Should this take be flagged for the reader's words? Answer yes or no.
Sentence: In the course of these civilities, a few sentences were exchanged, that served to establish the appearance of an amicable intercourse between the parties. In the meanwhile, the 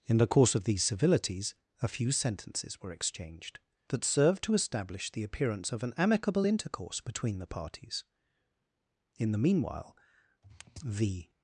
no